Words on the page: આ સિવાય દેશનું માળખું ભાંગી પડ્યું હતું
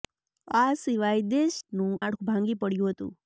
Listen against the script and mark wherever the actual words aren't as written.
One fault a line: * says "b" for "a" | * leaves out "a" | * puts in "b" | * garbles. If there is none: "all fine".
all fine